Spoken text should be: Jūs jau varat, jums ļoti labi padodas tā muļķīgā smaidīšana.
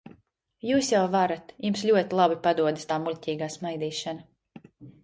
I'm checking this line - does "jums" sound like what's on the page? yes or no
yes